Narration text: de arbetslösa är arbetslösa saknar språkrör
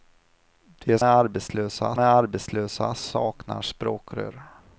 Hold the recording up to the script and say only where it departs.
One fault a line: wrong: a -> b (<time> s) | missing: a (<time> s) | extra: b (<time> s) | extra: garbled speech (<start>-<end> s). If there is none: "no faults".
no faults